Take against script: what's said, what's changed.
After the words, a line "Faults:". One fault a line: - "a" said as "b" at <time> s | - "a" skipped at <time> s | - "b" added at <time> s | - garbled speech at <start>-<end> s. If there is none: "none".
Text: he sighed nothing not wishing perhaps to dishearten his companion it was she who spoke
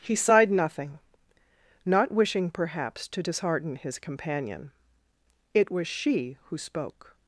he sighed nothing not wishing perhaps to dishearten his companion it was she who spoke
Faults:
none